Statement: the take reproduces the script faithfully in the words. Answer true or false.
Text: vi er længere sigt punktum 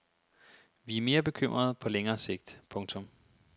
false